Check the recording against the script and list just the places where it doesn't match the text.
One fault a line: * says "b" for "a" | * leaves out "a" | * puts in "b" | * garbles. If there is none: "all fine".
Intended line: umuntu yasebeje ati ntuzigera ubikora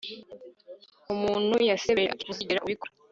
all fine